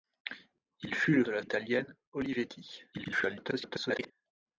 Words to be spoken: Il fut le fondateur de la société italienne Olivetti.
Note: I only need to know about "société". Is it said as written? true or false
false